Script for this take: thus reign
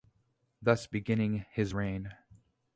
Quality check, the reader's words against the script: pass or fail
fail